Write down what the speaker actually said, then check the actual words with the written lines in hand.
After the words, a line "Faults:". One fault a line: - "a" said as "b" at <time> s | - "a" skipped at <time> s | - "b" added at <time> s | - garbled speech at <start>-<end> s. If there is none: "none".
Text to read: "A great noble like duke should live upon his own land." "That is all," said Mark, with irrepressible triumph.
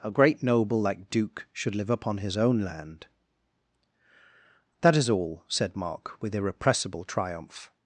"A great noble like duke should live upon his own land." "That is all," said Mark, with irrepressible triumph.
Faults:
none